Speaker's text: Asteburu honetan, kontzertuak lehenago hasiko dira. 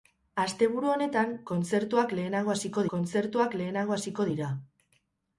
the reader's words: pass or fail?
fail